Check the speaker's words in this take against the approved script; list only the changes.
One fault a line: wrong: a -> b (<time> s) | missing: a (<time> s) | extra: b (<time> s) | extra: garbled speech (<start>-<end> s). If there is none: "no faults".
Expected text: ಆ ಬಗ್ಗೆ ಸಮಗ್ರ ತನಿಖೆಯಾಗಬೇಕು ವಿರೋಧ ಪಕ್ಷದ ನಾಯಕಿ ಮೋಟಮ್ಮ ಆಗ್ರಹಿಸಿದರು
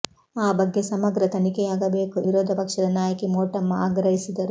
no faults